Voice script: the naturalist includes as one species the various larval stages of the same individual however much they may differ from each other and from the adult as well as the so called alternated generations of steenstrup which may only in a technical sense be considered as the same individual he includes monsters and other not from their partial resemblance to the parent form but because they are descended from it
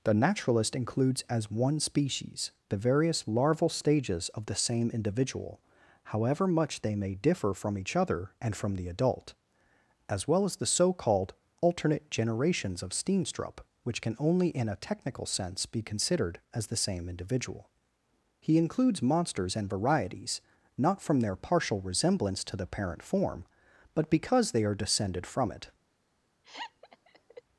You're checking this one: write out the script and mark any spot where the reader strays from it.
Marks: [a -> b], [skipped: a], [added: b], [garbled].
the naturalist includes as one species the various larval stages of the same individual however much they may differ from each other and from the adult as well as the so called [alternated -> alternate] generations of steenstrup which [may -> can] only in a technical sense be considered as the same individual he includes monsters and [other -> varieties] not from their partial resemblance to the parent form but because they are descended from it